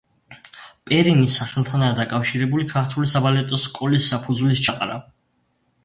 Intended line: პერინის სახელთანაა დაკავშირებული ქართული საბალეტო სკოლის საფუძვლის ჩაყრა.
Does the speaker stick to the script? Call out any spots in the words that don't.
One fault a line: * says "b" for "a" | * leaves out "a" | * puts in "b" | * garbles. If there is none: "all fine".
all fine